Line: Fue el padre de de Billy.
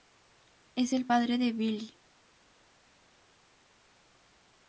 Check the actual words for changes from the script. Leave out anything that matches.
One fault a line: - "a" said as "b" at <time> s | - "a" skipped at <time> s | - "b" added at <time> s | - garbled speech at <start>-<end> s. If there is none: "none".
- "Fue" said as "Es" at 0.7 s
- "de" skipped at 1.5 s